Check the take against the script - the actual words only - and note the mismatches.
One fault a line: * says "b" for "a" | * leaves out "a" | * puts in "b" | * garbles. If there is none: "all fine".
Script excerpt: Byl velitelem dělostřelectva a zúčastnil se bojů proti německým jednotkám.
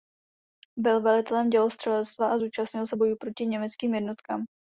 all fine